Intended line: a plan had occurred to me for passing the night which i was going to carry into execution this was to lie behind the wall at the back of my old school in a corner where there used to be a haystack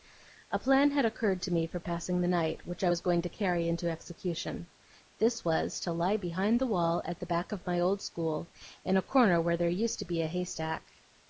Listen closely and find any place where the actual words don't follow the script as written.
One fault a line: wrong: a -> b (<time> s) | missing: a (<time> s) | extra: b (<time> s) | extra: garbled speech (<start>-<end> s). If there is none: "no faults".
no faults